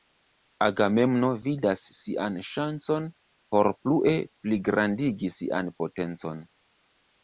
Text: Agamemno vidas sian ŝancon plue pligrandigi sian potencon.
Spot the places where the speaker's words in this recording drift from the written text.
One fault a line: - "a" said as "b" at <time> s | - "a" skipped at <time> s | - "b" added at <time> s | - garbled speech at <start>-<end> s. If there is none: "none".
- "por" added at 3.6 s